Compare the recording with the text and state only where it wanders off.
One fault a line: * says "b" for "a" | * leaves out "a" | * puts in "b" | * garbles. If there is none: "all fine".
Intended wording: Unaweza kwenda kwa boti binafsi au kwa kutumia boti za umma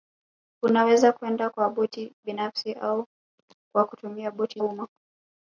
* leaves out "za"